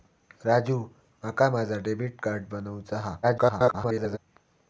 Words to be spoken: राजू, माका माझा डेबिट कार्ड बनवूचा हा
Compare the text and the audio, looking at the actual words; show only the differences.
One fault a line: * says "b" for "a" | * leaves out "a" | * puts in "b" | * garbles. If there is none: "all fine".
* garbles